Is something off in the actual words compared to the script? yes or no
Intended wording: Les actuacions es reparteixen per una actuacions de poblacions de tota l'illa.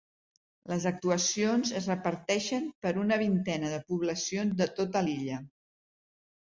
yes